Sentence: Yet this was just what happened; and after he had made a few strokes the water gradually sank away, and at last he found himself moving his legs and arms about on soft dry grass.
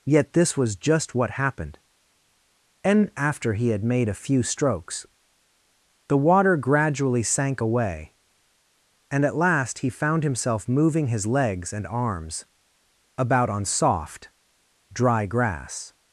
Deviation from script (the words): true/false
false